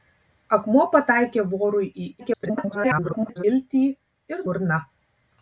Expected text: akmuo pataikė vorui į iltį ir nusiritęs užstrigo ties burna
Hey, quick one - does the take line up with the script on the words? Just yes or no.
no